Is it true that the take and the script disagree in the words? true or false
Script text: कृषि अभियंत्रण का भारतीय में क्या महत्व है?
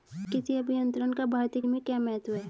false